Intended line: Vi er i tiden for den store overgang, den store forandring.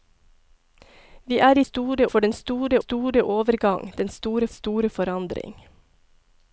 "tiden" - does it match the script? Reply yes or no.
no